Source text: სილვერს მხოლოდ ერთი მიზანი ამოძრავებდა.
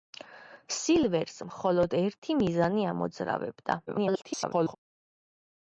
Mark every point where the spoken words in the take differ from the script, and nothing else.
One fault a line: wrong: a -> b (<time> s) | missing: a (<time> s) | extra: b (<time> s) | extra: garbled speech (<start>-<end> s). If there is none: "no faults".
extra: garbled speech (3.9-4.8 s)